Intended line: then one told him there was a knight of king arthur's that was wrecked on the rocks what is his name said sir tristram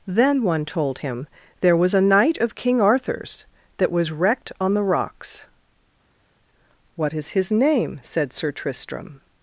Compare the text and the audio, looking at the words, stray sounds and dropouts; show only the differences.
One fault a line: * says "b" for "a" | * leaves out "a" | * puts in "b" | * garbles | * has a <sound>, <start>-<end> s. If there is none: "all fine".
all fine